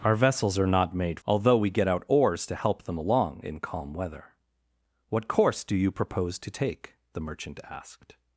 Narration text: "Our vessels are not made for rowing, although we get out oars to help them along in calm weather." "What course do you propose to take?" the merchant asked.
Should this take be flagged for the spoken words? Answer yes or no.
yes